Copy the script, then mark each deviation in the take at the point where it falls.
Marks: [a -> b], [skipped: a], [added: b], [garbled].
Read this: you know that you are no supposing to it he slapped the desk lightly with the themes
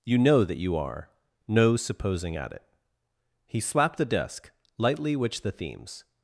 you know that you are no supposing [to -> at] it he slapped the desk lightly [with -> which] the themes